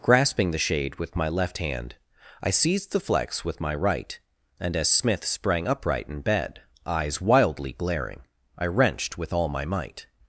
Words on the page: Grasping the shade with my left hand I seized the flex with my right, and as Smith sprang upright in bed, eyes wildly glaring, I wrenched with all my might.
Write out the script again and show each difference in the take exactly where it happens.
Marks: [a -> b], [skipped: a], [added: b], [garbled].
Grasping the shade with my left hand I seized the flex with my right, and as Smith sprang upright in bed, eyes wildly glaring, I wrenched with all my might.